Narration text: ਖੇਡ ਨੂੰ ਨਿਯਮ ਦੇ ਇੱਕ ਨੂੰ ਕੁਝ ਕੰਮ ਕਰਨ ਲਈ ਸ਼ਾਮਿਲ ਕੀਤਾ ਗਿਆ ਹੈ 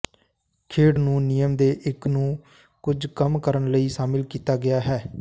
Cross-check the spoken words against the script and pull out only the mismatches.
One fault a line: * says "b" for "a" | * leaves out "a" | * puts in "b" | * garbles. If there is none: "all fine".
all fine